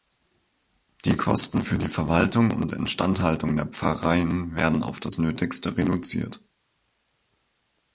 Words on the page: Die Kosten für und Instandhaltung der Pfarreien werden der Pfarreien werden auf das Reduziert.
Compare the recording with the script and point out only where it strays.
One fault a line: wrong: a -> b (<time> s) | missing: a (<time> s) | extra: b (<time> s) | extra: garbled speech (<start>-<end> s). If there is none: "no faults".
extra: die Verwaltung (1.8 s)
missing: der Pfarreien werden (4.8 s)
extra: Nötigste (5.2 s)